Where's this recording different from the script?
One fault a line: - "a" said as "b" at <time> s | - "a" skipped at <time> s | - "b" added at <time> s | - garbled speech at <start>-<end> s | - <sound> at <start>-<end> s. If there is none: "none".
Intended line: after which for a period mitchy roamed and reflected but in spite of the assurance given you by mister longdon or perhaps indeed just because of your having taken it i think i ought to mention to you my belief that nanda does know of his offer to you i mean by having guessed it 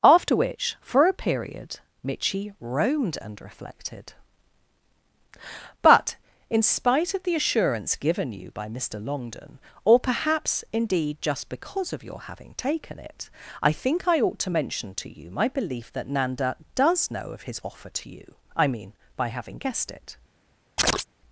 - chirp at 20.8-21.1 s